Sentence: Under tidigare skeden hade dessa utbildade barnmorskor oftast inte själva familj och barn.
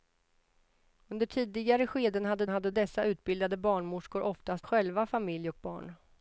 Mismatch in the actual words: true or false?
true